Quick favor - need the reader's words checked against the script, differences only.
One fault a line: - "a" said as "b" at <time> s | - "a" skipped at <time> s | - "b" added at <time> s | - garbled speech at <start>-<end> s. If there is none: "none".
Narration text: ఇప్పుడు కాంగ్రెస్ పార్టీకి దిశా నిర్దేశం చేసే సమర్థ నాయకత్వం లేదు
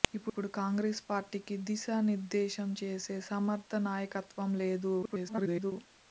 - garbled speech at 5.0-5.7 s